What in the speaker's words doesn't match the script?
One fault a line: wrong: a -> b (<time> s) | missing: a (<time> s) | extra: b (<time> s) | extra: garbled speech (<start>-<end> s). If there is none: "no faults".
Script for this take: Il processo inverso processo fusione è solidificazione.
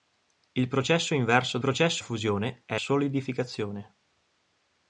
no faults